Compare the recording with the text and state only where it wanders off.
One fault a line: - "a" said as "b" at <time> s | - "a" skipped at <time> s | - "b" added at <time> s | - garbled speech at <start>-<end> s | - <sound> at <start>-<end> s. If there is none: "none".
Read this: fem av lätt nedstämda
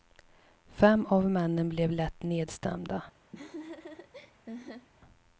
- "männen blev" added at 1.3 s
- laugh at 3.3-4.9 s